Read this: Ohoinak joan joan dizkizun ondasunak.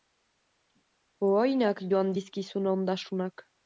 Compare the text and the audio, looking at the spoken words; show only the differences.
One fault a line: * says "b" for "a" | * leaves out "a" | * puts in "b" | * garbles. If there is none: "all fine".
* leaves out "joan"